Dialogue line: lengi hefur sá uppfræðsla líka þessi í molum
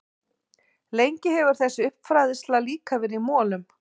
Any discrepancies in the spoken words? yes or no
yes